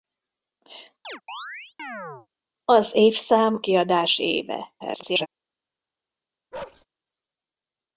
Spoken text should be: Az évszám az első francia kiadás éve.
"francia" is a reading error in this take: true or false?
true